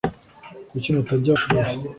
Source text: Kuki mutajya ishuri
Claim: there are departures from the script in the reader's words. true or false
false